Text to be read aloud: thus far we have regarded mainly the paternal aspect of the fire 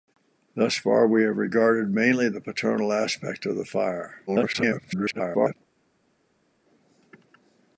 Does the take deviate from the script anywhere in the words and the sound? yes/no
yes